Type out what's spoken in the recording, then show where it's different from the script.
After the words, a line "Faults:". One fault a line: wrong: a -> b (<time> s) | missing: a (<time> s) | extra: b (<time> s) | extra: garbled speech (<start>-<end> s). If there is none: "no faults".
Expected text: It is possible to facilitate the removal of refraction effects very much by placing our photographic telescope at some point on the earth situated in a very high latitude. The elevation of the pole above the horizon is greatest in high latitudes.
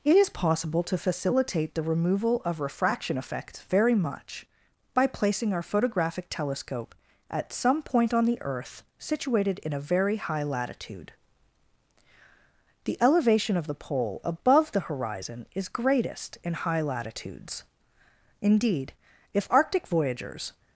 It is possible to facilitate the removal of refraction effects very much by placing our photographic telescope at some point on the earth situated in a very high latitude. The elevation of the pole above the horizon is greatest in high latitudes. Indeed, if Arctic voyagers
Faults:
extra: Indeed if Arctic voyagers (18.4 s)